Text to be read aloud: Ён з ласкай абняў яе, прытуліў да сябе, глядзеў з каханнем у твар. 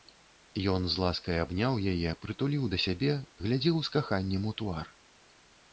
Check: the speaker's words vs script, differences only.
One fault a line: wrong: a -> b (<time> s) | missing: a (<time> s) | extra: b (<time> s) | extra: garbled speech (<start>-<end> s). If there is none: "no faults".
no faults